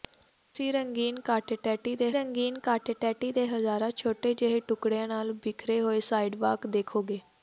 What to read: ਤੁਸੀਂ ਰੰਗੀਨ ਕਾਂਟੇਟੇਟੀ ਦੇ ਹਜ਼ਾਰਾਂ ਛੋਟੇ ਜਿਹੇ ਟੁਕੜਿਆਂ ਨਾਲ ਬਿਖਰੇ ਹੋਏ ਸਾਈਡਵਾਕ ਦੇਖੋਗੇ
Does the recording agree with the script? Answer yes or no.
no